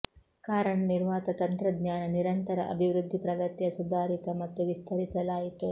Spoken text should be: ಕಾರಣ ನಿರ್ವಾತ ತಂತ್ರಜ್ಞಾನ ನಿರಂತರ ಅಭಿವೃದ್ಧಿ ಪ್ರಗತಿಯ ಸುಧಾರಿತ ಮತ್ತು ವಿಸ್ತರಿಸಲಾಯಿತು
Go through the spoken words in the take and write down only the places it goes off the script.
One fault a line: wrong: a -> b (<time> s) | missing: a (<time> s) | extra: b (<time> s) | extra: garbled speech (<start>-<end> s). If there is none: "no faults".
no faults